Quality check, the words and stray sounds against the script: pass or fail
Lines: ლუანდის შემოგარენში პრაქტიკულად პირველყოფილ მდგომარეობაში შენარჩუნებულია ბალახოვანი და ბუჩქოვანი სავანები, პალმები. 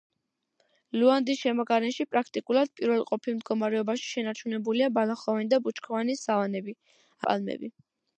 pass